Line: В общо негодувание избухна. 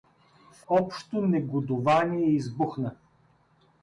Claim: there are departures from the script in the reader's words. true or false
false